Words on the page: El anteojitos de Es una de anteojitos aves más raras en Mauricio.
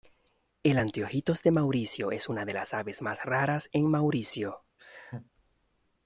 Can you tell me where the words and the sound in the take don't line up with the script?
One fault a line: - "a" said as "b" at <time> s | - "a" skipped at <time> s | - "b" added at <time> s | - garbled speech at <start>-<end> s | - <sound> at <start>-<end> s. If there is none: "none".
- "Mauricio" added at 1.5 s
- "anteojitos" said as "las" at 2.5 s
- laugh at 4.8-5.3 s